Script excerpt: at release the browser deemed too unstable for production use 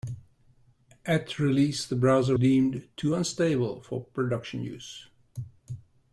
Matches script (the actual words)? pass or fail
pass